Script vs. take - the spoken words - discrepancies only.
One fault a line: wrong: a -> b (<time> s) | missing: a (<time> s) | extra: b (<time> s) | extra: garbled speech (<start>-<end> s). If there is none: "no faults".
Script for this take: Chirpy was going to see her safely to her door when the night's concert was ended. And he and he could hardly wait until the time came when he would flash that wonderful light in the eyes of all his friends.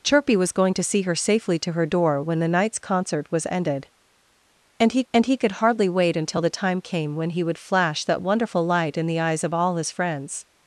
no faults